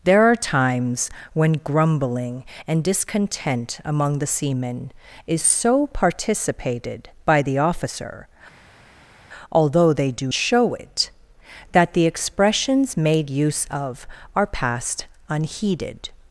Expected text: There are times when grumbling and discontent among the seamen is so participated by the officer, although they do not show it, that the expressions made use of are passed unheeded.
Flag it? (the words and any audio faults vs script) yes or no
yes